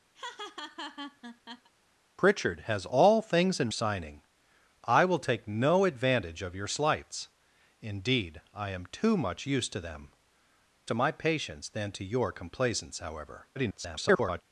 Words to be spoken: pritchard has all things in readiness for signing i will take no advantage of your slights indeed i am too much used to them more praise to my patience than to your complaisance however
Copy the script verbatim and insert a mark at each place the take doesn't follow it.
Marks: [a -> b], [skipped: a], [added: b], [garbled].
pritchard has all things in [skipped: readiness for] signing i will take no advantage of your slights indeed i am too much used to them [skipped: more praise] to my patience than to your complaisance however [garbled]